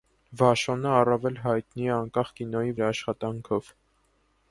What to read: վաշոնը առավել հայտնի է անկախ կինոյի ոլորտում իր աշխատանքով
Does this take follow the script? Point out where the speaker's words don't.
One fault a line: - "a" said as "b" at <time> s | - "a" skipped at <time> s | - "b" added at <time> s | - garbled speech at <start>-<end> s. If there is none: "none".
- "ոլորտում" skipped at 2.7 s